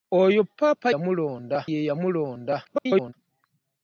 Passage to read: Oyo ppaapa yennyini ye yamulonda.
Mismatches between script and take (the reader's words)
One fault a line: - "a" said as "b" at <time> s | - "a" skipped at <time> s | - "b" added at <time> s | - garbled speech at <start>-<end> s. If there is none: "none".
- "yennyini" said as "yamulonda" at 0.9 s
- garbled speech at 2.6-3.1 s